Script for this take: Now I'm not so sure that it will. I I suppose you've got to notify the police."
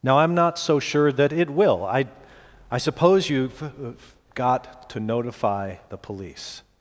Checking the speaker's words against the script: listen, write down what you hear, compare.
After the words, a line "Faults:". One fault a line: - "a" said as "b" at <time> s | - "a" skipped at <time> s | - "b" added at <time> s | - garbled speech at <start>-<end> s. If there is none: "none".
Now I'm not so sure that it will. I I suppose you've got to notify the police."
Faults:
none